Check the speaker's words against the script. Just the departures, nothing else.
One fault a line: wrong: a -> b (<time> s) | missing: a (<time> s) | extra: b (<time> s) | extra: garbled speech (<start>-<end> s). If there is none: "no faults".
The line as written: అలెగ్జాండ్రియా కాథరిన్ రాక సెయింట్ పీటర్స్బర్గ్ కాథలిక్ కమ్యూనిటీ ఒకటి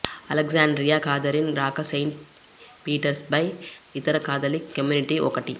extra: ఇతర (3.9 s)